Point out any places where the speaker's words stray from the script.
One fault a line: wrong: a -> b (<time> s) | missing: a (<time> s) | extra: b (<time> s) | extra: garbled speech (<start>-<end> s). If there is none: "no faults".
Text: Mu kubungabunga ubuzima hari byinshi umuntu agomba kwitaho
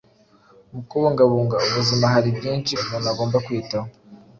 no faults